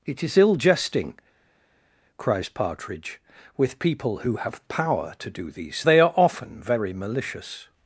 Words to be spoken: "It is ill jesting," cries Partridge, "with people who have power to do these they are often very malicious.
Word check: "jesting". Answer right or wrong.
right